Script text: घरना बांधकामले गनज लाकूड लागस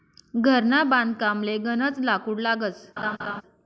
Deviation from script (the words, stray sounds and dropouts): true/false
true